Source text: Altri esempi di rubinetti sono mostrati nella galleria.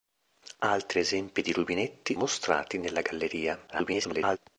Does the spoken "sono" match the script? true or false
false